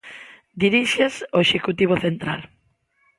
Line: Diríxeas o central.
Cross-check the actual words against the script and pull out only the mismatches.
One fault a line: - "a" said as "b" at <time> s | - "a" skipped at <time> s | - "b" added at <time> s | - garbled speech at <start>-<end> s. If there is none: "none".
- "executivo" added at 1.5 s